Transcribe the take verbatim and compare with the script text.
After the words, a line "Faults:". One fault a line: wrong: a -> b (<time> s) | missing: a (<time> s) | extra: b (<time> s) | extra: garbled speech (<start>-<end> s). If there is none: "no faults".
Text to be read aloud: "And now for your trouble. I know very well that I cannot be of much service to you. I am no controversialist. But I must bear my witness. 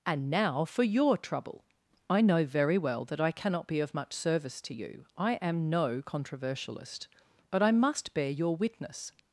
"And now for your trouble. I know very well that I cannot be of much service to you. I am no controversialist. But I must bear your witness.
Faults:
wrong: my -> your (8.3 s)